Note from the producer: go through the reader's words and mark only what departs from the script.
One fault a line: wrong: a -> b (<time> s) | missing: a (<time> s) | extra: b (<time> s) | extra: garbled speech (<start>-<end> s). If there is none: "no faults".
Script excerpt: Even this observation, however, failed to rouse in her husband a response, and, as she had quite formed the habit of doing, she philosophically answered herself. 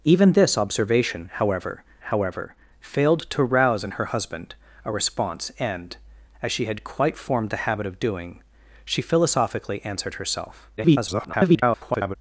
extra: however (2.0 s)
extra: garbled speech (10.8-12.2 s)